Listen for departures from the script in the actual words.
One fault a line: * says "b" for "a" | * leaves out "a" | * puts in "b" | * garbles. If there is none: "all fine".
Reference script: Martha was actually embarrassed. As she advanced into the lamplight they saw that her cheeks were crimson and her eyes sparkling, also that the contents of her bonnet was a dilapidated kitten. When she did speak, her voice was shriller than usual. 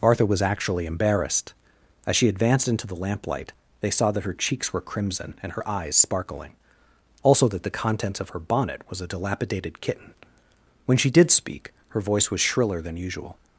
all fine